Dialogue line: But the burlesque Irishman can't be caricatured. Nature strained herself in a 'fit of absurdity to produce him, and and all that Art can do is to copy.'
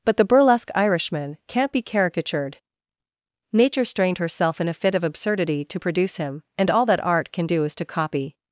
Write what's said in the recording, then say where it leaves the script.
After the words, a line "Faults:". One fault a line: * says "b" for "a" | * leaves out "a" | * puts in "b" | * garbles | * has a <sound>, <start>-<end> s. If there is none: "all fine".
But the burlesque Irishman can't be caricatured. Nature strained herself in a 'fit of absurdity to produce him, and all that Art can do is to copy.'
Faults:
* leaves out "and"